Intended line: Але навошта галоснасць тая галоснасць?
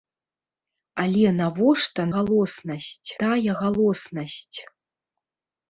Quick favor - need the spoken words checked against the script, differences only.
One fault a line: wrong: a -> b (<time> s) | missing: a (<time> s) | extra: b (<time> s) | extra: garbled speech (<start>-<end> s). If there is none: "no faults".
no faults